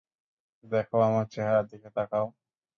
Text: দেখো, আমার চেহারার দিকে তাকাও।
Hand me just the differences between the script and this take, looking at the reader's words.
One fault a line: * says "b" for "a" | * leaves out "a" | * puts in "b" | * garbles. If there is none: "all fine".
all fine